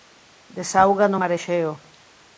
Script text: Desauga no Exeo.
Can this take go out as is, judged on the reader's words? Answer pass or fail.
fail